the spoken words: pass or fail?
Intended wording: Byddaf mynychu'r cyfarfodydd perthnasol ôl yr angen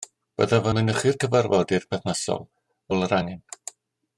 pass